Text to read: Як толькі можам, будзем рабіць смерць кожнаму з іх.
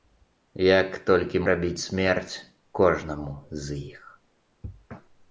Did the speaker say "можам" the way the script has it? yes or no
no